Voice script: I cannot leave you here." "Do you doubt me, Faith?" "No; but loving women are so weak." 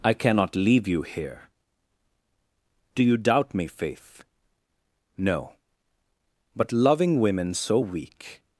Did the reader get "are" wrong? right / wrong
wrong